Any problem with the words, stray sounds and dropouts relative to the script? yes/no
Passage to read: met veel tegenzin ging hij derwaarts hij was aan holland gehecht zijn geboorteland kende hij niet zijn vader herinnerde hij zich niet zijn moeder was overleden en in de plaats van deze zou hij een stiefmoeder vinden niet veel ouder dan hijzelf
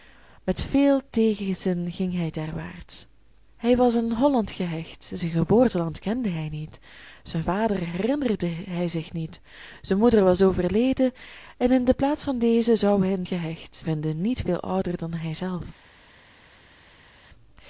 yes